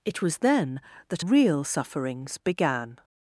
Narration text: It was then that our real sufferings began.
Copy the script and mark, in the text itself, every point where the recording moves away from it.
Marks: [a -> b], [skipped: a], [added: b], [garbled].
It was then that [skipped: our] real sufferings began.